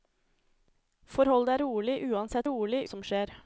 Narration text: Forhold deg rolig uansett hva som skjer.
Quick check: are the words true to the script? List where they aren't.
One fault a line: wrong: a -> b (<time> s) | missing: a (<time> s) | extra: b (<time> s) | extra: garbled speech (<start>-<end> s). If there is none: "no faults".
wrong: hva -> rolig (2.5 s)